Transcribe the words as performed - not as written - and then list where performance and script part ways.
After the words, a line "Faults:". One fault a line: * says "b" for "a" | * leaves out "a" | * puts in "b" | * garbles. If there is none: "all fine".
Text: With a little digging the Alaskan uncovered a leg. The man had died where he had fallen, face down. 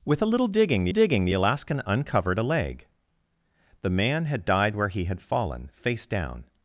With a little digging the digging the Alaskan uncovered a leg. The man had died where he had fallen, face down.
Faults:
* puts in "digging the"